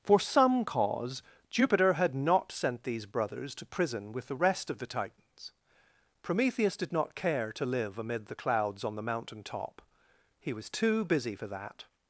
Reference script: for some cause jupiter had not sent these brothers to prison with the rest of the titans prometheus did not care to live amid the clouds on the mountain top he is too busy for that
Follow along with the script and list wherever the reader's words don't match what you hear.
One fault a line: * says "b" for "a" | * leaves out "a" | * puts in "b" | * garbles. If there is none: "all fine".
* says "was" for "is"